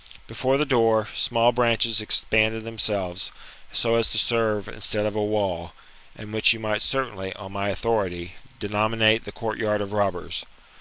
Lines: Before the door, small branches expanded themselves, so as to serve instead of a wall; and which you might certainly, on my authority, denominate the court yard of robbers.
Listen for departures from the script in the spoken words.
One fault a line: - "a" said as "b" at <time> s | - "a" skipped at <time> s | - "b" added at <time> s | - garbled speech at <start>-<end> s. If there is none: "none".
none